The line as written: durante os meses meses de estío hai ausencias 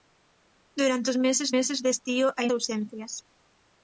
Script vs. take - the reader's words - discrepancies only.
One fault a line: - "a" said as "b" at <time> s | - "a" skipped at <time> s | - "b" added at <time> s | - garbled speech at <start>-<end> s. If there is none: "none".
none